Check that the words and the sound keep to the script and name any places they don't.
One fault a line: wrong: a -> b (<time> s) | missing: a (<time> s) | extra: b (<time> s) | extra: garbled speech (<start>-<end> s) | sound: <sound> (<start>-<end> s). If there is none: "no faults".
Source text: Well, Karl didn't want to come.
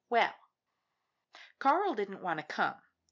no faults